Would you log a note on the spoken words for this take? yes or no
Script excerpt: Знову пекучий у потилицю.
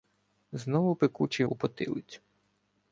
no